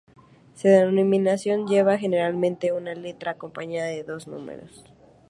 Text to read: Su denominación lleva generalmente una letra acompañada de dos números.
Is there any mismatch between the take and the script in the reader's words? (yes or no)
no